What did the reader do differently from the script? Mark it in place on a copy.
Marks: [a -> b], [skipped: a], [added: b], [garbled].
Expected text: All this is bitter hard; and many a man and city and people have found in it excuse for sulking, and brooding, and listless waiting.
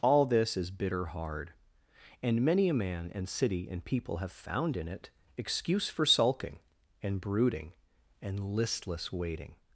All this is bitter hard; and many a man and city and people have found in it excuse for sulking, and brooding, and listless waiting.